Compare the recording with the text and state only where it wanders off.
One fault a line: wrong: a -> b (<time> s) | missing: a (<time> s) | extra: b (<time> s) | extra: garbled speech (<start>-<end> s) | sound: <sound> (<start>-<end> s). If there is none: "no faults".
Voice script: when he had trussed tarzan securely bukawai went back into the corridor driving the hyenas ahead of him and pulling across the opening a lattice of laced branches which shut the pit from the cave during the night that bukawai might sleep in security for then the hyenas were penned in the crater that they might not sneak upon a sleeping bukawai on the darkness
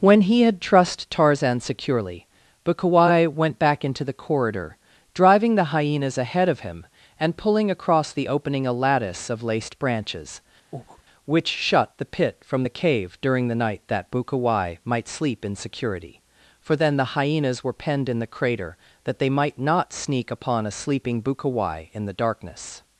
sound: breath (10.7-11.0 s)
wrong: on -> in (21.9 s)